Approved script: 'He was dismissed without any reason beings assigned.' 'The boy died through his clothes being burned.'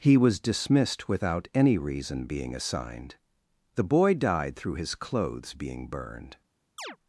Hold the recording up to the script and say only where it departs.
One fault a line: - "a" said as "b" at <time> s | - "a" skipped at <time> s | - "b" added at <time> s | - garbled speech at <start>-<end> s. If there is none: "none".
- "beings" said as "being" at 2.2 s